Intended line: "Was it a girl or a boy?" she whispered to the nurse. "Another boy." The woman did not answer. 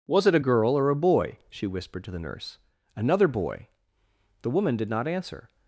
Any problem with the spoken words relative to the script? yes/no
no